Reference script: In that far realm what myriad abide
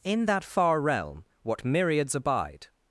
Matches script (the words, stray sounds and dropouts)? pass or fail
fail